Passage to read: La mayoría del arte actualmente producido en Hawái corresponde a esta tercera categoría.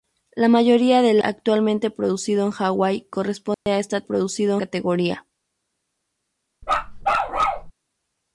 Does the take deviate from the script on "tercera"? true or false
true